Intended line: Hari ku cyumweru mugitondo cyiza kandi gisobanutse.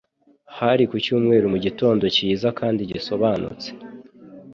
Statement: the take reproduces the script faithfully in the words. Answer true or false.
true